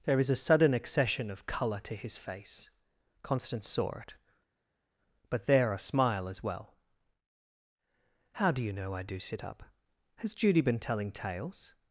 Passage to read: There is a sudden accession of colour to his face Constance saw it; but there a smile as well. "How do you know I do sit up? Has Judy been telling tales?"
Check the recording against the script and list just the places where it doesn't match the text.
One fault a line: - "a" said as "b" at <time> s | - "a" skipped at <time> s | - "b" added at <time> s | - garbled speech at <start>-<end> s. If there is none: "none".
none